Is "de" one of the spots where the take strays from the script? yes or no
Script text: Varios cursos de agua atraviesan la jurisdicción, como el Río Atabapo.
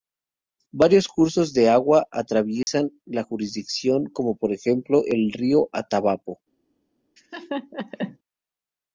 no